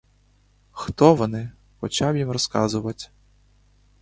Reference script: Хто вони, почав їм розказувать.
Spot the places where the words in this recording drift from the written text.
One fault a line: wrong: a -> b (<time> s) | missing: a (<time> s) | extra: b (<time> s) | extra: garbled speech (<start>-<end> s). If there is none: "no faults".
no faults